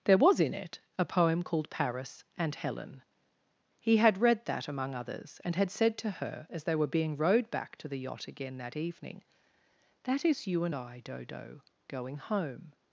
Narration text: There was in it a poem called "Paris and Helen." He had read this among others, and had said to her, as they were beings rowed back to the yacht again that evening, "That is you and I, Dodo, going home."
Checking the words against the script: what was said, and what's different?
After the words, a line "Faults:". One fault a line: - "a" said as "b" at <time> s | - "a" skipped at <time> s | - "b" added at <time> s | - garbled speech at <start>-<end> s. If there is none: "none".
There was in it a poem called "Paris and Helen." He had read that among others, and had said to her, as they were being rowed back to the yacht again that evening, "That is you and I, Dodo, going home."
Faults:
- "this" said as "that" at 4.5 s
- "beings" said as "being" at 6.9 s